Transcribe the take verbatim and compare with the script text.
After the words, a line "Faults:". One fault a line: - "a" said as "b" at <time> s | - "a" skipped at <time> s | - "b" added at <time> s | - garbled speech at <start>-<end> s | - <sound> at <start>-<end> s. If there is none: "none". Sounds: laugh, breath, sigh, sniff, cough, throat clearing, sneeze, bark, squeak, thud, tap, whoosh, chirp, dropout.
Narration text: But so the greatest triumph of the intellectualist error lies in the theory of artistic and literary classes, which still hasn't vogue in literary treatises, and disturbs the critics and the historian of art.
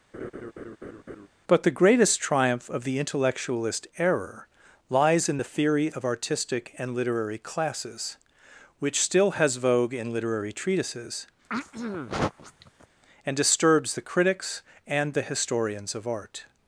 But the greatest triumph of the intellectualist error lies in the theory of artistic and literary classes, which still has vogue in literary treatises, and disturbs the critics and the historians of art.
Faults:
- laugh at 0.1-1.3 s
- "so" skipped at 1.6 s
- "hasn't" said as "has" at 9.3 s
- throat clearing at 11.5-12.9 s
- "historian" said as "historians" at 15.2 s